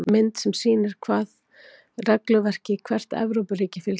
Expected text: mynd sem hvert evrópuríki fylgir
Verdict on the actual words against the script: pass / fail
fail